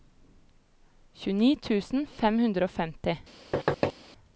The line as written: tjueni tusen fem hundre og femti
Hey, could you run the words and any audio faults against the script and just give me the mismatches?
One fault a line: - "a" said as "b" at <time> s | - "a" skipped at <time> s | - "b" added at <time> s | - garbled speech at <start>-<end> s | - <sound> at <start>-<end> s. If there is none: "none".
- thud at 3.5-3.9 s